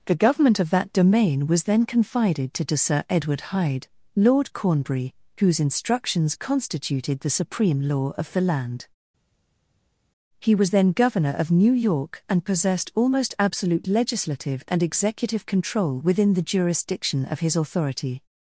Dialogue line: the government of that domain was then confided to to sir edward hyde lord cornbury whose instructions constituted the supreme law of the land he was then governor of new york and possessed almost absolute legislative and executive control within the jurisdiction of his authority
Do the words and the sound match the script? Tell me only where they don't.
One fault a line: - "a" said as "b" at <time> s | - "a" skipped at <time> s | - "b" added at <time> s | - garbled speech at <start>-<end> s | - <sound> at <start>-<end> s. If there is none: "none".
none